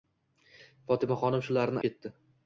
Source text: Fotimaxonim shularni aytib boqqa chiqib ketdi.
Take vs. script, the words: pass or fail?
fail